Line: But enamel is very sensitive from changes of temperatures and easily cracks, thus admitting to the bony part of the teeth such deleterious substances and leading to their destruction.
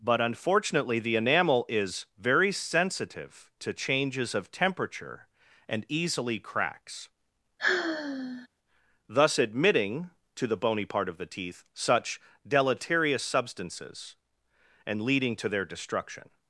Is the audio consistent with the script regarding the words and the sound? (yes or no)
no